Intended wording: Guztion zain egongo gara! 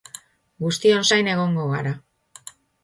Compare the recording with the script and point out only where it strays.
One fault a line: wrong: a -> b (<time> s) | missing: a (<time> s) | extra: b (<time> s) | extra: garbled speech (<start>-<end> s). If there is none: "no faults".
no faults